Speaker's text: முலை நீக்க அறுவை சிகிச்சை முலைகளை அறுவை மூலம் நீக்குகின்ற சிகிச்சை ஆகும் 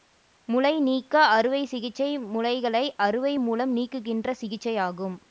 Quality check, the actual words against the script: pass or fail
pass